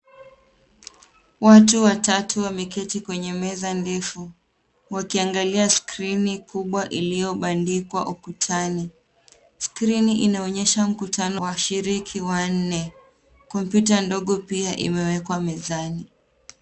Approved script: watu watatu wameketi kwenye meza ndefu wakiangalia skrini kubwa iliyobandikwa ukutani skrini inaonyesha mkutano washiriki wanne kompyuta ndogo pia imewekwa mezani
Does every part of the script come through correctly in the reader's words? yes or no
yes